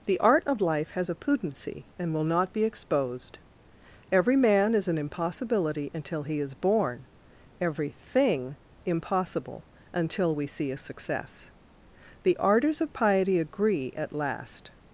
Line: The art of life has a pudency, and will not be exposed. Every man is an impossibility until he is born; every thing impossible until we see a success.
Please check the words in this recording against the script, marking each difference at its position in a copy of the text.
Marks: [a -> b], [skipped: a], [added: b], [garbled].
The art of life has a pudency, and will not be exposed. Every man is an impossibility until he is born; every thing impossible until we see a success. [added: The ardors of piety agree at last]